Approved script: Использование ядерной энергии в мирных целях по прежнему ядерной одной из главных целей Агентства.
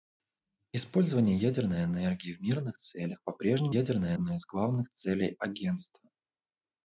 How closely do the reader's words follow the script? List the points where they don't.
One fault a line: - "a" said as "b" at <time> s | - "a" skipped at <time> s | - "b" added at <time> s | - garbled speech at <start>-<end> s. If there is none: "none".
none